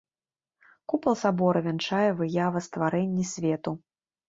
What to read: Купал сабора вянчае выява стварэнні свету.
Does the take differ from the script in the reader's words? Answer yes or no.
no